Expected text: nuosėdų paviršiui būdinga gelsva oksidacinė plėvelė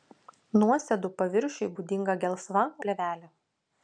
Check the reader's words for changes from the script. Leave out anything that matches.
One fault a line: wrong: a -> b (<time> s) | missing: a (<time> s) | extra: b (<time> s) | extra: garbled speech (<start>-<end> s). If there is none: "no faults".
missing: oksidacinė (2.6 s)